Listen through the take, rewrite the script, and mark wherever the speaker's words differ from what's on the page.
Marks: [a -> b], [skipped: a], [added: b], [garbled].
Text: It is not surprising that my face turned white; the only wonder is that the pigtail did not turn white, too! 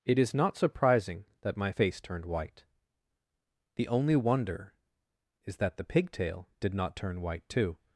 It is not surprising that my face turned white; the only wonder is that the pigtail did not turn white, too!